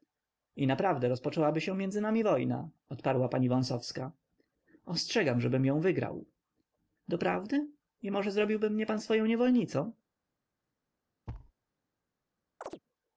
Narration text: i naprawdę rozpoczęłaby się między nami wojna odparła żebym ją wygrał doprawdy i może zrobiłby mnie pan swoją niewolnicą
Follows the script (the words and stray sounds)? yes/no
no